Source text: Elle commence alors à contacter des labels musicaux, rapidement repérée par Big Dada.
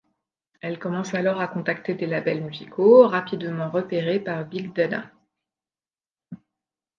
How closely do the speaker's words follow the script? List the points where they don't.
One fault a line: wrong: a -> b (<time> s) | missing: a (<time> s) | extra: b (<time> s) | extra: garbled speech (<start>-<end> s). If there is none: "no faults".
no faults